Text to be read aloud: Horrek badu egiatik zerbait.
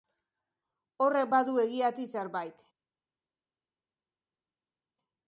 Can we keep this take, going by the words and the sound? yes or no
yes